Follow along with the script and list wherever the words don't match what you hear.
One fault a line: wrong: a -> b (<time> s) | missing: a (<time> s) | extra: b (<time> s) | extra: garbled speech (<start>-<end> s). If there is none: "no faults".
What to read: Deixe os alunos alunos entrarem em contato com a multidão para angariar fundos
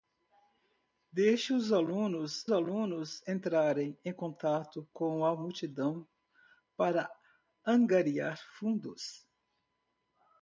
no faults